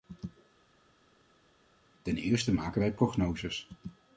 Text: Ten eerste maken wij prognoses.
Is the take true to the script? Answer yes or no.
yes